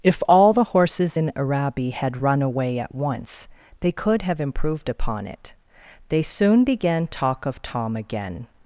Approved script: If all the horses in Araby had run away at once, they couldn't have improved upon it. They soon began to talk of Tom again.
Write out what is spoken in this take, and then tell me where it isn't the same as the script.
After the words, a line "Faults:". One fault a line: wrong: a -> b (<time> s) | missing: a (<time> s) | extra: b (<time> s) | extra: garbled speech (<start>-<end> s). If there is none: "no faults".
If all the horses in Araby had run away at once, they could have improved upon it. They soon began talk of Tom again.
Faults:
wrong: couldn't -> could (3.9 s)
missing: to (7.1 s)